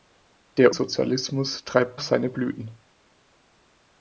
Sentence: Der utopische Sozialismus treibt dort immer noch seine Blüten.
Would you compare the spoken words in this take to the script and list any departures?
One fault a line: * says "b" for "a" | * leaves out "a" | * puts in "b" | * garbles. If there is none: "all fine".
* leaves out "utopische"
* leaves out "dort immer noch"